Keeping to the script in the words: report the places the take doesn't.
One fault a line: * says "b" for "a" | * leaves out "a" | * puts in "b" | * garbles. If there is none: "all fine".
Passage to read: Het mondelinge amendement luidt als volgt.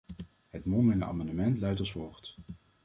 all fine